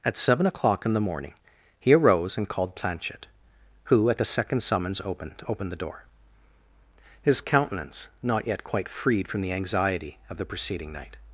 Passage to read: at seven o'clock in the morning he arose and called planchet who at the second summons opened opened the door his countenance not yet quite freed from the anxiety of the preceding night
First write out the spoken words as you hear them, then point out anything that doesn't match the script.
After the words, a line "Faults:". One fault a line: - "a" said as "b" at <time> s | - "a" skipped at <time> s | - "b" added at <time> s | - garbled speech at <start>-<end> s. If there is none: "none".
at seven o'clock in the morning he arose and called planchet who at the second summons opened opened the door his countenance not yet quite freed from the anxiety of the preceding night
Faults:
none